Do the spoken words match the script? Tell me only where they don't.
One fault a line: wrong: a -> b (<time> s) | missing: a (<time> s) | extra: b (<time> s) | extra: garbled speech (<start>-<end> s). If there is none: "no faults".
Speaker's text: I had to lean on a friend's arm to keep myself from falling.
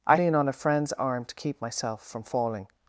missing: had to (0.1 s)